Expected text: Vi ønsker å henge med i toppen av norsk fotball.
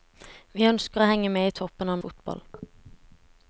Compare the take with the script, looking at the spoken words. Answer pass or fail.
fail